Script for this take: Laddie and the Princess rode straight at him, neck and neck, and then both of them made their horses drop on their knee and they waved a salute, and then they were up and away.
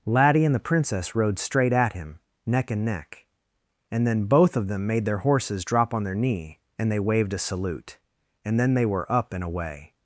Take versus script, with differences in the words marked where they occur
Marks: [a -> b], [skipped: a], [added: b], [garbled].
Laddie and the Princess rode straight at him, neck and neck, and then both of them made their horses drop on their knee and they waved a salute, and then they were up and away.